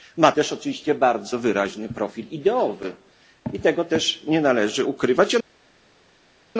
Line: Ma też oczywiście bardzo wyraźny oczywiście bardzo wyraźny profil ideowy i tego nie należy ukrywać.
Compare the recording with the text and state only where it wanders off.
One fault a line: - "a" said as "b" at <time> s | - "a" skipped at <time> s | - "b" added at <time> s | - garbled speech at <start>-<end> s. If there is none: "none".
- "oczywiście bardzo wyraźny" skipped at 1.9 s
- "też" added at 3.8 s